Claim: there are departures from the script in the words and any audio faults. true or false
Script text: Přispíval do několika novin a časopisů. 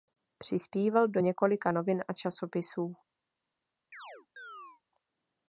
true